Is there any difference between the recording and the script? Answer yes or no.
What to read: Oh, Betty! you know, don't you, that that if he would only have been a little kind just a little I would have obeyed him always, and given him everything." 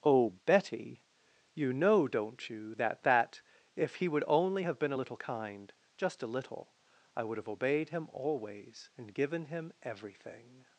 no